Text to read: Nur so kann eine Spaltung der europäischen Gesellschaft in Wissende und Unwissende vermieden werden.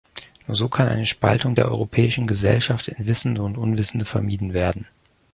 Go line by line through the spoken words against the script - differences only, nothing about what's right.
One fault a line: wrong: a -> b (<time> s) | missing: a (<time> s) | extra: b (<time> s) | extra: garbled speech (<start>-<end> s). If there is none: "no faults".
no faults